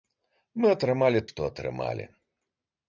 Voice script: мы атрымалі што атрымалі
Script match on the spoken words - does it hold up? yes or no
yes